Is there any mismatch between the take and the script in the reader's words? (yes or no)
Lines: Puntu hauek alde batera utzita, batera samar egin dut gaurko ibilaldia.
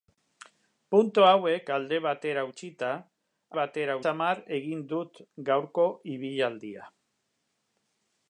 no